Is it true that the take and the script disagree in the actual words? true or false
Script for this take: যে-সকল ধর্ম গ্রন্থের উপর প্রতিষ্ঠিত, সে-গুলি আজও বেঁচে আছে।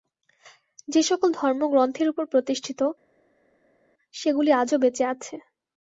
false